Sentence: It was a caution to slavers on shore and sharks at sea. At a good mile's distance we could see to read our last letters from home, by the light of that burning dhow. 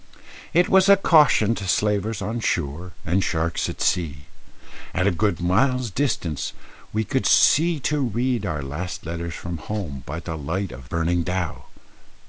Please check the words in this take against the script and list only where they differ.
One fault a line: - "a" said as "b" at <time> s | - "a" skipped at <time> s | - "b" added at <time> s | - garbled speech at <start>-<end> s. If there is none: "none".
- "that" skipped at 10.9 s